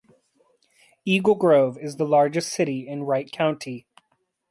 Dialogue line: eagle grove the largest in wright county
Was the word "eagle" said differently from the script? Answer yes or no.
no